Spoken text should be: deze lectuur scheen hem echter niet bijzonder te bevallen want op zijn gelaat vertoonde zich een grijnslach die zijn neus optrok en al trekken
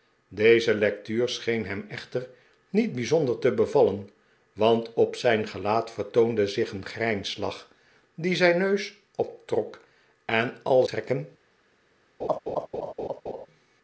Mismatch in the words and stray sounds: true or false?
true